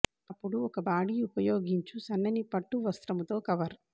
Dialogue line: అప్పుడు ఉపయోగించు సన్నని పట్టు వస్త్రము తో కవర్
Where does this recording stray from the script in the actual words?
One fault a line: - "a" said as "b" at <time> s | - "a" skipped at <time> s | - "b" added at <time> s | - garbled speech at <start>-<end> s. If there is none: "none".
- "ఒక బాడీ" added at 0.7 s